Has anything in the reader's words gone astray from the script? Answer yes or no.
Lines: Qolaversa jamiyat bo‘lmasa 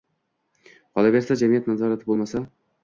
yes